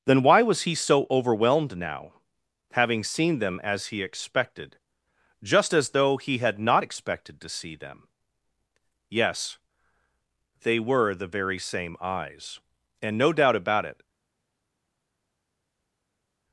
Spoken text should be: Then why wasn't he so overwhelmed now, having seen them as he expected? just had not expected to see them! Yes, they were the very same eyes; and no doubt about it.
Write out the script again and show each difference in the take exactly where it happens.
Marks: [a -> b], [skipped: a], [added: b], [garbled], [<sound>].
Then why [wasn't -> was] he so overwhelmed now, having seen them as he expected? just [added: as though he] had not expected to see them! Yes, they were the very same eyes; and no doubt about it.